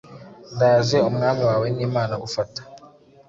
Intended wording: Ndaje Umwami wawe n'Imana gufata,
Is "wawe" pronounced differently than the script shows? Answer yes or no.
no